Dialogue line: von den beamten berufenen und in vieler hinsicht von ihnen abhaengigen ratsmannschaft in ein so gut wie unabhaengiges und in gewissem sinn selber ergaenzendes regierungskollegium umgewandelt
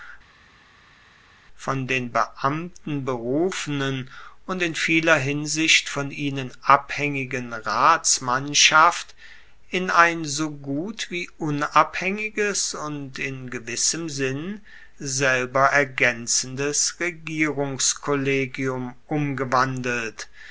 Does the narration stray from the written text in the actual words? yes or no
no